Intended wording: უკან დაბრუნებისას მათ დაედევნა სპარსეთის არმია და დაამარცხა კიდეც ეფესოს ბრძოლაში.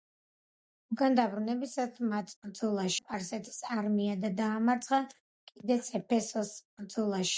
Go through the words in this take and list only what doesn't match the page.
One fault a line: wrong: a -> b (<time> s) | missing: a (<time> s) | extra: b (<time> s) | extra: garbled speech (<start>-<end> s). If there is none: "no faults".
wrong: დაედევნა -> ბრძოლაში (2.4 s)